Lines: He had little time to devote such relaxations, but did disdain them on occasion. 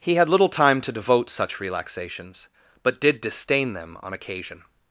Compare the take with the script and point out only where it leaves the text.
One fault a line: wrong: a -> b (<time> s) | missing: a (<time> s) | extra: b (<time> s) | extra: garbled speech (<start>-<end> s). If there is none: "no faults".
no faults